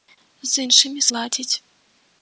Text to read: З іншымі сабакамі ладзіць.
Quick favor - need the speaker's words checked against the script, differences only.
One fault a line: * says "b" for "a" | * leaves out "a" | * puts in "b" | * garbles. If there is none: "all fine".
* leaves out "сабакамі"